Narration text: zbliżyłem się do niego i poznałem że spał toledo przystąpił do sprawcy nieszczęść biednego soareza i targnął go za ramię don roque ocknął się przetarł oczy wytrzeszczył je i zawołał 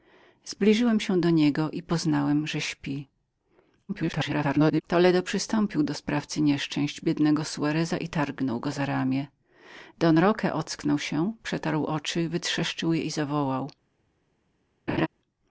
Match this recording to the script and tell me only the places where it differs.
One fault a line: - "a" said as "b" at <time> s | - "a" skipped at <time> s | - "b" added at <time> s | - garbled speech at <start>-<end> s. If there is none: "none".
- garbled speech at 3.9-4.8 s